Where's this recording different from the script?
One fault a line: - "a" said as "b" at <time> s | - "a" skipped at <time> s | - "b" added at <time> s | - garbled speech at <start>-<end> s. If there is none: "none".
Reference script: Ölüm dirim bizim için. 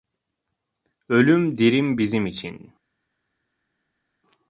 none